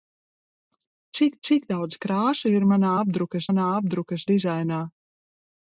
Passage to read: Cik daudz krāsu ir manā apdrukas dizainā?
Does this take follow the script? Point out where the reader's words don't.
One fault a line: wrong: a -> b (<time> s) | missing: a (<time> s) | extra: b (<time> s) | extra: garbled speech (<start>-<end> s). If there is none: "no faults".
extra: cik (1.5 s)
extra: manā apdrukas (3.5 s)